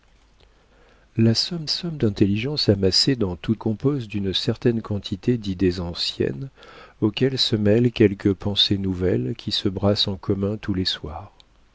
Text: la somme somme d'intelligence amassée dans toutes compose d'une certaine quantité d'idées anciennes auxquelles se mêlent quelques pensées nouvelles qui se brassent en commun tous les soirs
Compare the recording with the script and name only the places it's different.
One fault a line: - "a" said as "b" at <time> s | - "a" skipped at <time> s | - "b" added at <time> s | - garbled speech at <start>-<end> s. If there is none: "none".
none